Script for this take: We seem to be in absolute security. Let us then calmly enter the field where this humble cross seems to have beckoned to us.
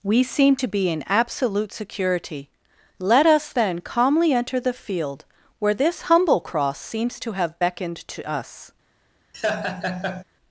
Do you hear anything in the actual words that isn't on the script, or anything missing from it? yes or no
no